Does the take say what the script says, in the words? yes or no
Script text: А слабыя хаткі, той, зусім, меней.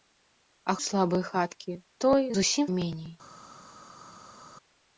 yes